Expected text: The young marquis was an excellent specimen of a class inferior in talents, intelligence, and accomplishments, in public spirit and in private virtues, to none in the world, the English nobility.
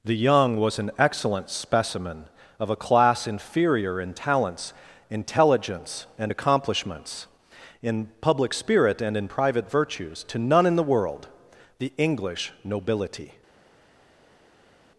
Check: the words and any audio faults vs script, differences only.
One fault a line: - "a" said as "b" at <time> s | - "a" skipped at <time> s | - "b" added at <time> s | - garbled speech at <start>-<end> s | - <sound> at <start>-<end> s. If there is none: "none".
- "marquis" skipped at 0.6 s